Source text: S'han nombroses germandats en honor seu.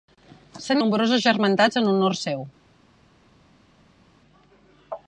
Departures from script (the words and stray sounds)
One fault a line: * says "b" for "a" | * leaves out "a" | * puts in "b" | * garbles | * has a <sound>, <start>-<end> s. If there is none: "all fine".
all fine